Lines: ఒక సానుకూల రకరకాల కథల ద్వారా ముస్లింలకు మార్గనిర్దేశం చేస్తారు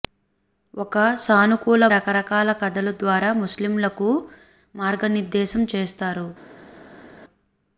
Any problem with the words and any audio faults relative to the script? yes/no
no